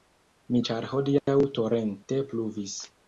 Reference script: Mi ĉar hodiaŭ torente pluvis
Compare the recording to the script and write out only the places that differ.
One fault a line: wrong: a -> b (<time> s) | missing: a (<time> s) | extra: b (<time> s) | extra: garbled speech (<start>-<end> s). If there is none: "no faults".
no faults